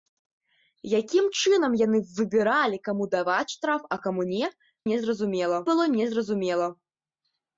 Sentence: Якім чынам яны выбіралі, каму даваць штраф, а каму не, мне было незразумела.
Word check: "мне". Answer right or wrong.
wrong